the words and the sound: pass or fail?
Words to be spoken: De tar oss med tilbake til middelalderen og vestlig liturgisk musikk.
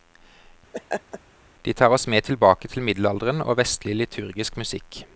fail